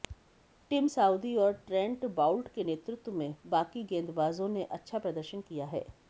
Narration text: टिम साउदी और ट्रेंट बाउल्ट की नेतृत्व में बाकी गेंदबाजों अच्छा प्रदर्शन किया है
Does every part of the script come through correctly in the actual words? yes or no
no